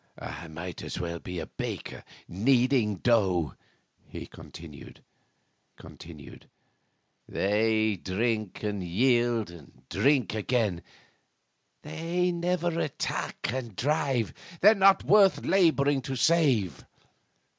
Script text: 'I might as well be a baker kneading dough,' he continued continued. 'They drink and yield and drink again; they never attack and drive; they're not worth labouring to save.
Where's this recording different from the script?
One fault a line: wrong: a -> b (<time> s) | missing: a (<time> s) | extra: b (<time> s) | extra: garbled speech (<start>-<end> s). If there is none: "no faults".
no faults